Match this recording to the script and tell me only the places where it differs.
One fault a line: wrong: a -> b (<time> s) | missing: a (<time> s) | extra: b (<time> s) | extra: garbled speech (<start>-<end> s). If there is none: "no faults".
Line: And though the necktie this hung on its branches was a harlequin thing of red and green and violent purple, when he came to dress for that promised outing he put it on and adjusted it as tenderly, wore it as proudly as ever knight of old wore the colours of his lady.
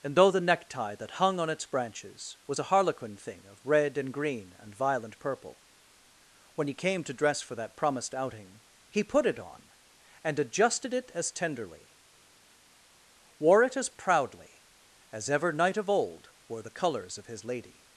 wrong: this -> that (0.9 s)